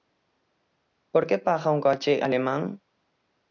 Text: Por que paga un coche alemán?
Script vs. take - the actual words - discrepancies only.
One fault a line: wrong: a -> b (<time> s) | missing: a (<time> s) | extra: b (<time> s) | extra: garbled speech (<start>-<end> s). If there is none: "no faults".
no faults